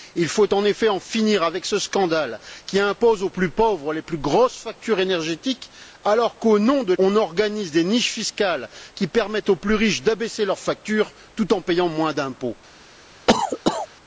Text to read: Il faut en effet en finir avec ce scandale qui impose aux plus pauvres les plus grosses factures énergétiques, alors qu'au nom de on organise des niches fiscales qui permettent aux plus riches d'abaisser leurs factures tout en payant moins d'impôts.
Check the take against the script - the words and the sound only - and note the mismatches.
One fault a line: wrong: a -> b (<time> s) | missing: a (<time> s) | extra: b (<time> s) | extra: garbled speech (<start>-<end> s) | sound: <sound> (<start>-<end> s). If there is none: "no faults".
sound: cough (13.3-13.9 s)